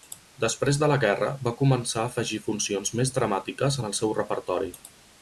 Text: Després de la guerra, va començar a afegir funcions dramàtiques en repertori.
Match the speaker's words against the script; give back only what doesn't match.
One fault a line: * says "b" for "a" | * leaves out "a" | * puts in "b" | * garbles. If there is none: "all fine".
* puts in "més"
* puts in "el seu"